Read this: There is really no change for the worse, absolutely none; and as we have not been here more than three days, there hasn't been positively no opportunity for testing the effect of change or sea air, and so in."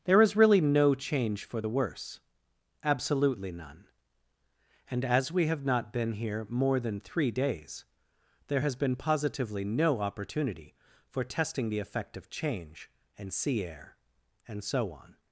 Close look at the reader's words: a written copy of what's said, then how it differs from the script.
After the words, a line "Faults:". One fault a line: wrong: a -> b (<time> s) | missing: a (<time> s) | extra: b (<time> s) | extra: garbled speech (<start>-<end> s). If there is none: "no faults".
There is really no change for the worse, absolutely none; and as we have not been here more than three days, there has been positively no opportunity for testing the effect of change and sea air, and so on."
Faults:
wrong: hasn't -> has (8.6 s)
wrong: or -> and (13.2 s)
wrong: in -> on (14.9 s)